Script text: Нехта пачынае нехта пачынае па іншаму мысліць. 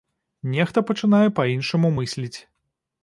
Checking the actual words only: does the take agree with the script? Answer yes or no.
no